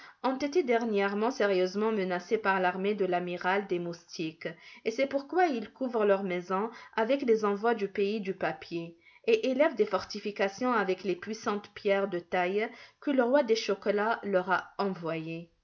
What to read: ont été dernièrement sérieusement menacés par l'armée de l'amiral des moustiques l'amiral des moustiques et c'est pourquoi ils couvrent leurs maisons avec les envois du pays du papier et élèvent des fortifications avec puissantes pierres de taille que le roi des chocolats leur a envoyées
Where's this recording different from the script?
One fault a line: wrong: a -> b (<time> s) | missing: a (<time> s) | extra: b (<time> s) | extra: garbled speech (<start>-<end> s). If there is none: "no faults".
missing: l'amiral des moustiques (4.5 s)
extra: les (11.0 s)